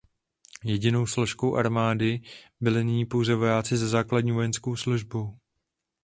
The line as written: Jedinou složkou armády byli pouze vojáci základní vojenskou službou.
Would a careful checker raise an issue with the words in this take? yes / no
yes